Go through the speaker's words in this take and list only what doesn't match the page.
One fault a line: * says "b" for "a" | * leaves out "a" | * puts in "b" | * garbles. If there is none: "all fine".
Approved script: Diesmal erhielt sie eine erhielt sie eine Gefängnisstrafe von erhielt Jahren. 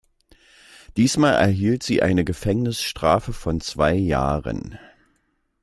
* leaves out "erhielt sie eine"
* says "zwei" for "erhielt"